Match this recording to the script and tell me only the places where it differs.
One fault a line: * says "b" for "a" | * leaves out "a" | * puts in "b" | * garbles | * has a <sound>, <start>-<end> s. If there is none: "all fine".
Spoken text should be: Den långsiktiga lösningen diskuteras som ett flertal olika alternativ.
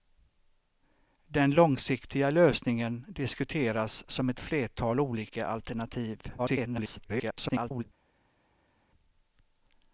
* garbles